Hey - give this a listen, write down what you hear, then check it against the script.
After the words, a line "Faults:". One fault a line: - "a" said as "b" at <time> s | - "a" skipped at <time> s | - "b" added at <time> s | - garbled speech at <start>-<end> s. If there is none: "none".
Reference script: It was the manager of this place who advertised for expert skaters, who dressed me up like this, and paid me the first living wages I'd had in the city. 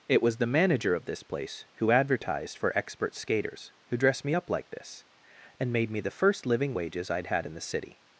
It was the manager of this place who advertised for expert skaters, who dressed me up like this, and made me the first living wages I'd had in the city.
Faults:
- "paid" said as "made" at 5.7 s